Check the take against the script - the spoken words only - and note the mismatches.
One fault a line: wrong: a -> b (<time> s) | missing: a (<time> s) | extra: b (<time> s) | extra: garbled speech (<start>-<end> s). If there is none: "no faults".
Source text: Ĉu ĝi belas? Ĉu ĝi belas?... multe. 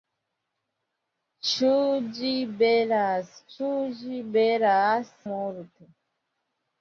no faults